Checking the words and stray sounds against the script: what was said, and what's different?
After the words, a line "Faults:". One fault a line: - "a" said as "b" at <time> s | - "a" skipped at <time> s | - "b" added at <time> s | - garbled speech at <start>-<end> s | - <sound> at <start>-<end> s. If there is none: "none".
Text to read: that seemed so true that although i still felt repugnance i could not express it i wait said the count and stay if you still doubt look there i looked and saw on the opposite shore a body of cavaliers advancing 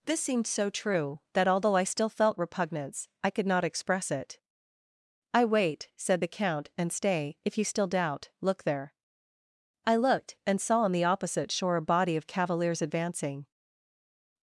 this seemed so true that although i still felt repugnance i could not express it i wait said the count and stay if you still doubt look there i looked and saw on the opposite shore a body of cavaliers advancing
Faults:
- "that" said as "this" at 0.1 s